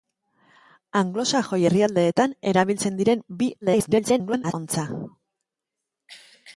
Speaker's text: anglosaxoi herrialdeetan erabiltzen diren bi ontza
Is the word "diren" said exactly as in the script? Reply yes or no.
yes